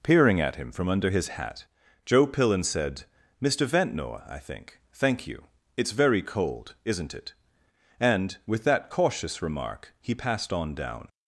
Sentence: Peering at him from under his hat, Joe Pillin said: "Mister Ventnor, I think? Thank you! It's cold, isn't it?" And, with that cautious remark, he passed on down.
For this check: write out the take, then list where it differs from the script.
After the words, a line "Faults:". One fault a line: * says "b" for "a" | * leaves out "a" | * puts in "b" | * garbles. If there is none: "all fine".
Peering at him from under his hat, Joe Pillin said: "Mister Ventnor, I think? Thank you! It's very cold, isn't it?" And, with that cautious remark, he passed on down.
Faults:
* puts in "very"